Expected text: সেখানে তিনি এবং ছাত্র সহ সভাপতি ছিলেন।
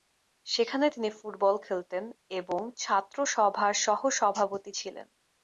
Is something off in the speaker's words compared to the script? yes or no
yes